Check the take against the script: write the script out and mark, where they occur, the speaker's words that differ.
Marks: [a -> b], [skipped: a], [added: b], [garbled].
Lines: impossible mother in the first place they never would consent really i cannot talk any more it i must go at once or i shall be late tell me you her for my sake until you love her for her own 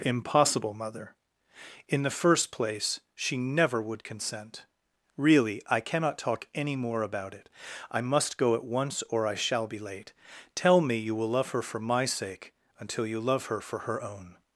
impossible mother in the first place [they -> she] never would consent really i cannot talk any more [added: about] it i must go at once or i shall be late tell me you [added: will love] her for my sake until you love her for her own